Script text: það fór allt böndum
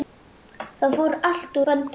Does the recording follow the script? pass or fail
pass